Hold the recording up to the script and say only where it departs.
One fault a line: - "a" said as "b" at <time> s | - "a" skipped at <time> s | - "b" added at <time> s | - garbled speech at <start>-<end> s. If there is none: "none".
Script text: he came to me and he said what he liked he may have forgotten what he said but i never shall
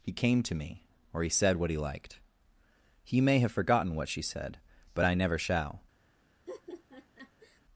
- "and" said as "or" at 1.1 s
- "he" said as "she" at 4.1 s